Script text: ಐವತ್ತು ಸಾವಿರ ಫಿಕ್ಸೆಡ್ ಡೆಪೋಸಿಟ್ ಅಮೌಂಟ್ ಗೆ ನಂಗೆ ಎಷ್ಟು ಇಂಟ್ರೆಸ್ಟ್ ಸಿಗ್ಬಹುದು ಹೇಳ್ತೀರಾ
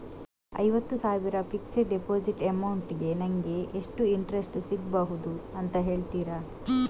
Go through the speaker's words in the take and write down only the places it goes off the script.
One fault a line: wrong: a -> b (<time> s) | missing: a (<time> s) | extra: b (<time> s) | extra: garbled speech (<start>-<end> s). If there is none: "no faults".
extra: ಅಂತ (5.6 s)